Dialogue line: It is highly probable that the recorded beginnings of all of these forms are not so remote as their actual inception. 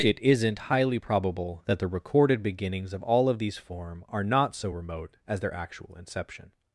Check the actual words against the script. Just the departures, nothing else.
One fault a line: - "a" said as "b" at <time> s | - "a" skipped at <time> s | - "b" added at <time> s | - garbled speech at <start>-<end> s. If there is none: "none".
- "is" said as "isn't" at 0.2 s
- "forms" said as "form" at 3.6 s